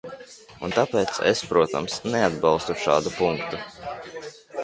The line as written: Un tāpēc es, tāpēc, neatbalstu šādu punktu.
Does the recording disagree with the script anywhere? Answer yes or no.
yes